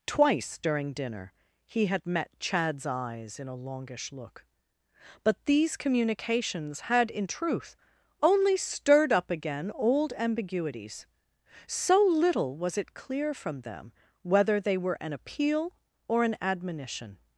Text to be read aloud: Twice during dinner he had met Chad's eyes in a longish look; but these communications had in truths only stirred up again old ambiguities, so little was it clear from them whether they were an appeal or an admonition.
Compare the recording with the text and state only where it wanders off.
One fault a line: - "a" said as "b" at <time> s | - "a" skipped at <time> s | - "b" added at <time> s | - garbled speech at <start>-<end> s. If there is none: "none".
- "truths" said as "truth" at 7.3 s